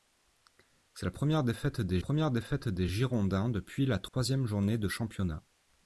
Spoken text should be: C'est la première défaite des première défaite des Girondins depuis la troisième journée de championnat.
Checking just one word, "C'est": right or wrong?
right